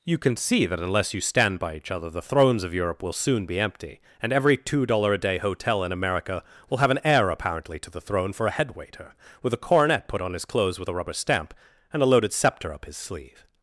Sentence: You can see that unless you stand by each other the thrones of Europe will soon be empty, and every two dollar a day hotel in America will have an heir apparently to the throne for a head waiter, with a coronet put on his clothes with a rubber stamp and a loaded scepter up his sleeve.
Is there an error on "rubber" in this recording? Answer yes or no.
no